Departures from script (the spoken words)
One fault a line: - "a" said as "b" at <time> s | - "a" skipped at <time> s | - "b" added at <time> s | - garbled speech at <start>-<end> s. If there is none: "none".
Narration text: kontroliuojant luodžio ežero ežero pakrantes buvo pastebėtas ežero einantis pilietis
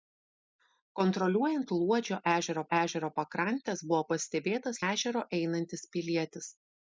none